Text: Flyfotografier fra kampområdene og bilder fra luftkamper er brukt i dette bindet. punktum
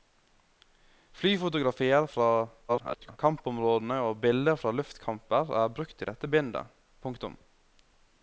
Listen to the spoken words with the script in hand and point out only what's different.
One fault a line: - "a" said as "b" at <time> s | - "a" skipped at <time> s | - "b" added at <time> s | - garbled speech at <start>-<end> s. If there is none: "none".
- garbled speech at 2.7-3.2 s